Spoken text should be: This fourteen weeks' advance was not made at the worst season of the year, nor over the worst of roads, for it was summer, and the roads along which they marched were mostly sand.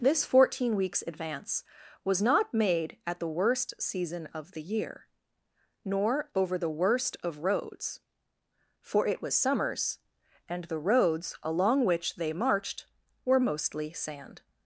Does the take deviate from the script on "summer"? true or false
true